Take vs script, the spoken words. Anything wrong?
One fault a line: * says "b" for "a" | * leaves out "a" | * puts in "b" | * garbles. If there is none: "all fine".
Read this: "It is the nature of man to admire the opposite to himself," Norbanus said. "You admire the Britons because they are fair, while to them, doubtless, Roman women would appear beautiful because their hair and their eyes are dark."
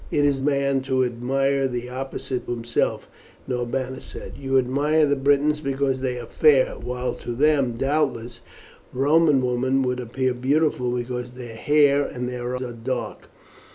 * leaves out "the nature of"
* leaves out "to"
* leaves out "eyes"